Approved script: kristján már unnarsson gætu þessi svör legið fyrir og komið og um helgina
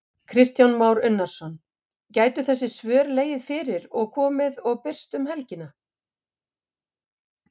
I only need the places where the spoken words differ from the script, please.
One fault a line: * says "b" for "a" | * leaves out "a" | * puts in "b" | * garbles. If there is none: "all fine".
* puts in "birst"